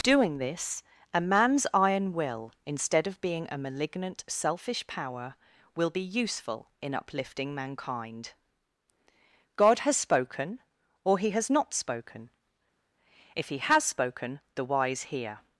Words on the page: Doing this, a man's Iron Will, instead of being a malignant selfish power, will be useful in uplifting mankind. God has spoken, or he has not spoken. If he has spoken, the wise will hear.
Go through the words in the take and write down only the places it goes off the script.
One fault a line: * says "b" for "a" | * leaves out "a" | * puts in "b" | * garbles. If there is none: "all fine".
* leaves out "will"